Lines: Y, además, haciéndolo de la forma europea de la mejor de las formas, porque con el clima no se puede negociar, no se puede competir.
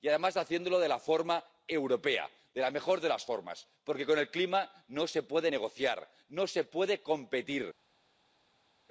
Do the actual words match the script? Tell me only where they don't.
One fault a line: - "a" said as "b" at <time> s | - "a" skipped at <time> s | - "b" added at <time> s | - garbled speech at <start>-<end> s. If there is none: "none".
none